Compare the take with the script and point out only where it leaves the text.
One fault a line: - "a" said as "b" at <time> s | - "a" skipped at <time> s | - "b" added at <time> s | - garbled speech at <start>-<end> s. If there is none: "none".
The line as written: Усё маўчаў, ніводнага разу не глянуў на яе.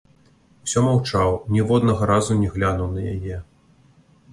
none